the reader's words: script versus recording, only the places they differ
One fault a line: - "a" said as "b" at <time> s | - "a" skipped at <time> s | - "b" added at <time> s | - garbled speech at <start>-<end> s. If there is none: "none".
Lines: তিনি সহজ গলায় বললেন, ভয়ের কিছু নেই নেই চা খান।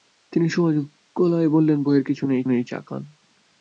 none